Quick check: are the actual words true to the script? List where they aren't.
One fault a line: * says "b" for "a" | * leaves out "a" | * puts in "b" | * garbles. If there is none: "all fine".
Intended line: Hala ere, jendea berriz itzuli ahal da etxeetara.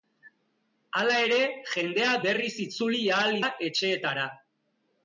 all fine